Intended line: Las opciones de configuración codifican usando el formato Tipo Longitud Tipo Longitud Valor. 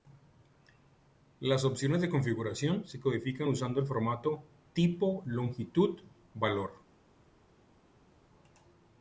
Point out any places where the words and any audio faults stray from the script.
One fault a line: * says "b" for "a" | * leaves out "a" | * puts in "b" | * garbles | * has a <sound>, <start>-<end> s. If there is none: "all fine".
* puts in "se"
* leaves out "Tipo Longitud"